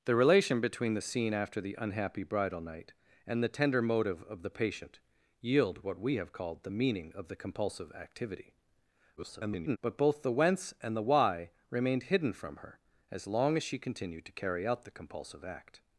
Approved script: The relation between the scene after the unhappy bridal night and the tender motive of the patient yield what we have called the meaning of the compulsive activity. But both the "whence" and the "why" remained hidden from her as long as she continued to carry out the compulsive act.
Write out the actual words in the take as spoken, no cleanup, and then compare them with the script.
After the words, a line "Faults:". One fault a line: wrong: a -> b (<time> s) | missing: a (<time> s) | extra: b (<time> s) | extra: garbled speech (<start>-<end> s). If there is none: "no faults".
The relation between the scene after the unhappy bridal night and the tender motive of the patient yield what we have called the meaning of the compulsive activity. [garbled] But both the "whence" and the "why" remained hidden from her as long as she continued to carry out the compulsive act.
Faults:
extra: garbled speech (9.2-9.8 s)